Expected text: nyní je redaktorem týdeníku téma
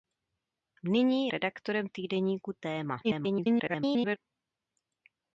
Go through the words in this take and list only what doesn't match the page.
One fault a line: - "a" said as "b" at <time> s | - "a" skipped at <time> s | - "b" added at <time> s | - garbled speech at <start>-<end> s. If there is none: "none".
- "je" skipped at 1.3 s
- garbled speech at 3.0-4.2 s